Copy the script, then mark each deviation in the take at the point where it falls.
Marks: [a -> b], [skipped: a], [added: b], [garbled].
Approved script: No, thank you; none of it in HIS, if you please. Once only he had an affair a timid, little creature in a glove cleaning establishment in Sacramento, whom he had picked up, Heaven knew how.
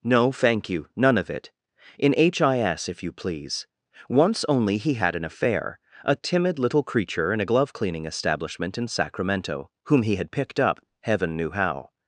No, thank you; none of it in HIS, if you please. Once only he had an affair a timid, little creature in a glove cleaning establishment in Sacramento, whom he had picked up, Heaven knew how.